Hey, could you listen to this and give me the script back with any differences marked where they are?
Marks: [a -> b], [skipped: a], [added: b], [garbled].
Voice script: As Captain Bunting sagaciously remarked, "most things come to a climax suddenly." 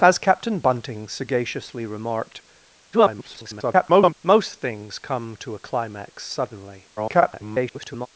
As Captain Bunting sagaciously remarked, [garbled] "most things come to a climax suddenly." [garbled]